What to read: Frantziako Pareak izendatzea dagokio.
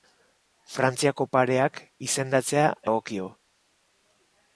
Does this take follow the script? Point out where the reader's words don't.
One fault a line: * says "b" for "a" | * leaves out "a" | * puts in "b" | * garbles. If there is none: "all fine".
all fine